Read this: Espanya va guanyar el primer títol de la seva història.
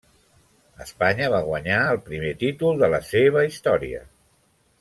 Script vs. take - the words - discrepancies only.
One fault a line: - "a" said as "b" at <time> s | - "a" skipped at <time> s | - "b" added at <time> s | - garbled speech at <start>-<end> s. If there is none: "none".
none